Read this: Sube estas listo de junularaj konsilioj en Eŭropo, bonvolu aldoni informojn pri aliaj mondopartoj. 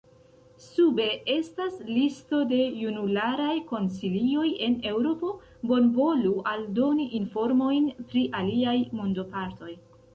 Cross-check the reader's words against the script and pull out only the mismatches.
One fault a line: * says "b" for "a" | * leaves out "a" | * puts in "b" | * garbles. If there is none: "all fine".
all fine